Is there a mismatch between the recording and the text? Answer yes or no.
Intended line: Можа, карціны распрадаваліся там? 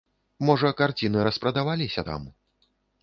no